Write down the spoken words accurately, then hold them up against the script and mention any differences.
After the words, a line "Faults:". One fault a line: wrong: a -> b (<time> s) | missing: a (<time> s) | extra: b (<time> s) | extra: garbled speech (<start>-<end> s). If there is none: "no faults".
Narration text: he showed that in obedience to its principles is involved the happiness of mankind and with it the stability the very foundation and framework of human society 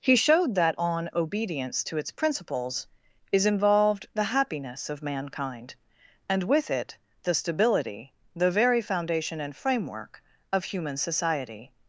he showed that on obedience to its principles is involved the happiness of mankind and with it the stability the very foundation and framework of human society
Faults:
wrong: in -> on (0.8 s)